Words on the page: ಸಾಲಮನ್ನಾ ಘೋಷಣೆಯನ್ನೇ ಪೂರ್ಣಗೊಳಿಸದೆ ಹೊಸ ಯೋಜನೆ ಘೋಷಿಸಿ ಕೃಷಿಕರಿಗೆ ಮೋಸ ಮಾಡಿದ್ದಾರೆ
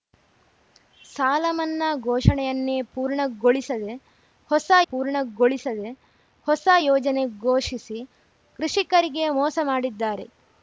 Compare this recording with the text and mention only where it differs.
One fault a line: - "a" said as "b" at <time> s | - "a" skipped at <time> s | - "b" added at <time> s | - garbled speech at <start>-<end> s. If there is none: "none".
- "ಪೂರ್ಣಗೊಳಿಸದೆ ಹೊಸ" added at 4.9 s